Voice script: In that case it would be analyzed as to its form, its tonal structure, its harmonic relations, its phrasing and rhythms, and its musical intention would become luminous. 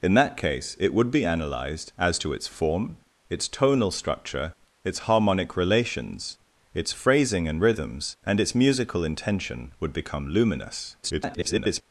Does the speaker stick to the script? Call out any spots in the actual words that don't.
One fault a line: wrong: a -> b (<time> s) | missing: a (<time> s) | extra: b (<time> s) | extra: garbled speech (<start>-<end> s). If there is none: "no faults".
extra: garbled speech (11.0-11.8 s)